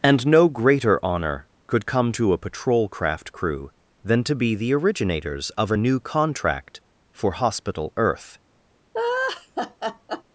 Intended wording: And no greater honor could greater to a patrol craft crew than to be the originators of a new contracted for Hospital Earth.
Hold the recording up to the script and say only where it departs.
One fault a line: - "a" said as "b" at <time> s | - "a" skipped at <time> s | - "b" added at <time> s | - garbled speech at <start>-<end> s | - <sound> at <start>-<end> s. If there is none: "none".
- "greater" said as "come" at 1.9 s
- "contracted" said as "contract" at 6.0 s
- laugh at 8.9-10.2 s